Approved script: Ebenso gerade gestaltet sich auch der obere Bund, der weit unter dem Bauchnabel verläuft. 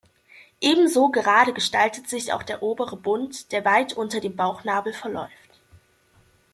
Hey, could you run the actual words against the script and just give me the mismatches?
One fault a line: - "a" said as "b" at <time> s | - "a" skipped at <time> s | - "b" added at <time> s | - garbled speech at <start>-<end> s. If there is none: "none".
none